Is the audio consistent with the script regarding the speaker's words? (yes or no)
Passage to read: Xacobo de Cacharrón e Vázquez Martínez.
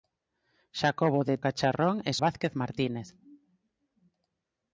yes